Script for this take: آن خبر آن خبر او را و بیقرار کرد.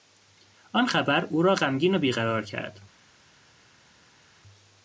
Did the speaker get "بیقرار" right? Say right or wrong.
right